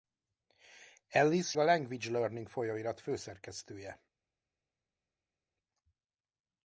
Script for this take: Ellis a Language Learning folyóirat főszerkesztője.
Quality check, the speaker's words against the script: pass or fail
pass